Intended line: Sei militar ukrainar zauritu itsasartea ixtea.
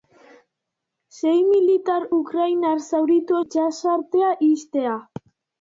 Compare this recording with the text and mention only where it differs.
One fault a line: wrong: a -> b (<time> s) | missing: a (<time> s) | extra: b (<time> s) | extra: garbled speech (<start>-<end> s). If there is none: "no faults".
no faults